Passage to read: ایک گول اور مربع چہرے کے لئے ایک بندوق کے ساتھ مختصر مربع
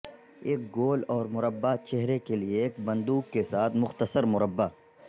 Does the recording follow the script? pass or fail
pass